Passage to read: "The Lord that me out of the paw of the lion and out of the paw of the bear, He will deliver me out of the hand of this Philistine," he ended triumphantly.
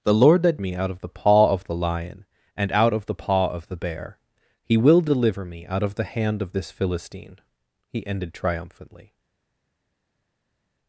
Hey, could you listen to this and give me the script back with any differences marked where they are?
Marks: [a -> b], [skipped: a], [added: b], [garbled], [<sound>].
"The Lord that me out of the paw of the lion and out of the paw of the bear, He will deliver me out of the hand of this Philistine," he ended triumphantly.